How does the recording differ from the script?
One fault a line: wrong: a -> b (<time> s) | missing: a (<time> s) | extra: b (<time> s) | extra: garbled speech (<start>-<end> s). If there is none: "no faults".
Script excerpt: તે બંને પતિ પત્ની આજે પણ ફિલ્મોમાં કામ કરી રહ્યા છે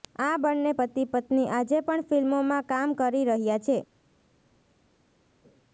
wrong: તે -> આ (0.2 s)